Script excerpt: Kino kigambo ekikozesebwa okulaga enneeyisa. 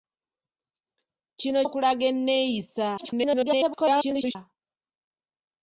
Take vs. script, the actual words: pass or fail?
fail